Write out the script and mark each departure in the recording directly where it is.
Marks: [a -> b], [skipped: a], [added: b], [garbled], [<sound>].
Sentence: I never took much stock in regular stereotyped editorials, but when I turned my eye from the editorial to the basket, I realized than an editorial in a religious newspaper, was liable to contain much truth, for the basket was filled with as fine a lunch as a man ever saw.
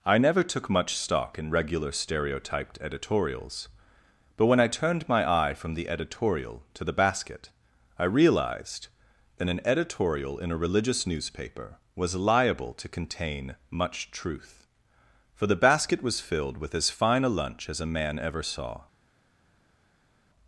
I never took much stock in regular stereotyped editorials, but when I turned my eye from the editorial to the basket, I realized [than -> that] an editorial in a religious newspaper, was liable to contain much truth, for the basket was filled with as fine a lunch as a man ever saw.